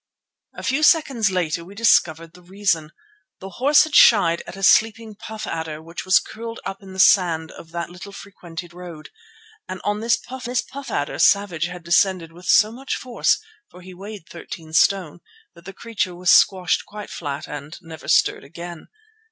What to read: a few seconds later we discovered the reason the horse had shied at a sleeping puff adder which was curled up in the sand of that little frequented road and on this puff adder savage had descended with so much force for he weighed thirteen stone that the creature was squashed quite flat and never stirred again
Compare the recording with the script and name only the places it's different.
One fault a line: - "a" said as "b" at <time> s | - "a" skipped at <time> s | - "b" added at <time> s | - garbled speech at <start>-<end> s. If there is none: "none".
- "this puff" added at 10.5 s